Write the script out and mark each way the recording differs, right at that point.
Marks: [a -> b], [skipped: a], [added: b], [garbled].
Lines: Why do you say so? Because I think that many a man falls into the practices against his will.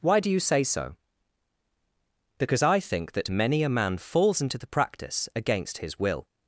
Why do you say so? Because I think that many a man falls into the [practices -> practice] against his will.